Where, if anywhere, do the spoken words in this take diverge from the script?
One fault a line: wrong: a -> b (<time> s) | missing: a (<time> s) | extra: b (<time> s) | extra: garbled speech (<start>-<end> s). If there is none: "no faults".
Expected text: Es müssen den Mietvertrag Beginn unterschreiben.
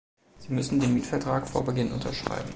wrong: Es -> Sie (0.4 s)
extra: vor (1.5 s)